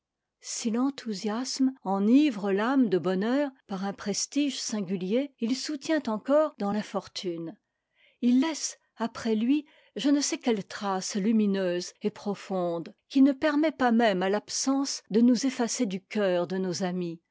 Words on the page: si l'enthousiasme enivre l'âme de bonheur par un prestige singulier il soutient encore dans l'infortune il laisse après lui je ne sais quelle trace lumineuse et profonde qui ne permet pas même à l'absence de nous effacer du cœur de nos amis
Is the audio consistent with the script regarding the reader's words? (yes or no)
yes